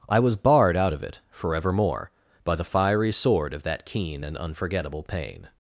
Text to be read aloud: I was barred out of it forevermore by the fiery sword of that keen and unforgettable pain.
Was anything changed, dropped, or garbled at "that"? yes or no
no